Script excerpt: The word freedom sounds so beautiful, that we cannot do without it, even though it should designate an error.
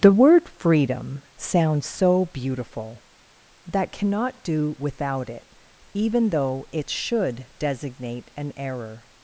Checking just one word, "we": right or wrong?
wrong